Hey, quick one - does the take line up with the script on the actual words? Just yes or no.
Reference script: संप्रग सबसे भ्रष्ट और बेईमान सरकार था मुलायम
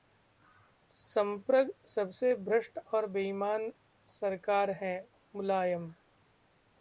no